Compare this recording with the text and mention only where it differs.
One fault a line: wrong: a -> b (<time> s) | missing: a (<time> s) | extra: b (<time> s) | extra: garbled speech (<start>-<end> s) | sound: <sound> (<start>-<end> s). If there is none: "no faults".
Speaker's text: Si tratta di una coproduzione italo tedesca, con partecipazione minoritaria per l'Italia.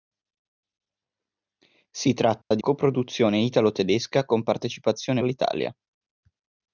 sound: dropout (2.4-2.5 s)
missing: una (2.6 s)
missing: minoritaria per (5.2 s)